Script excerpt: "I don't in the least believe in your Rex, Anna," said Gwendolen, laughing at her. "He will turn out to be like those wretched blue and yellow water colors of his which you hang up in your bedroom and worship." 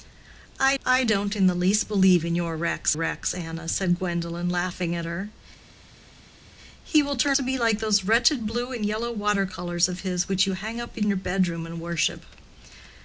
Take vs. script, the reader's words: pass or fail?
fail